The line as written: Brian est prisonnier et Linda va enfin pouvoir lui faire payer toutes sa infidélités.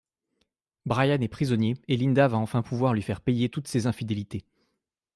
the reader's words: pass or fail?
fail